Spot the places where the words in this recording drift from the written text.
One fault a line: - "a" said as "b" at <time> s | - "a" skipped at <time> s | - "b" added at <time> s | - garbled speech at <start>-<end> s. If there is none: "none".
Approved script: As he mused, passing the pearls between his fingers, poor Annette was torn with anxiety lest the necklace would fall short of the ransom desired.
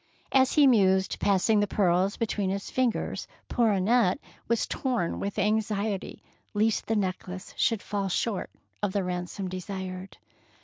- "would" said as "should" at 7.5 s